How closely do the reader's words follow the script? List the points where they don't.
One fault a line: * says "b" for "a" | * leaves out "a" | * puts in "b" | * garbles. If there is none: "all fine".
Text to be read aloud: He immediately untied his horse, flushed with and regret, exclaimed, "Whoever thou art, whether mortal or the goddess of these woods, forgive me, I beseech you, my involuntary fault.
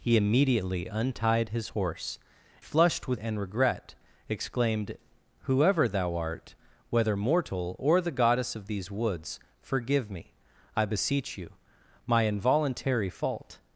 all fine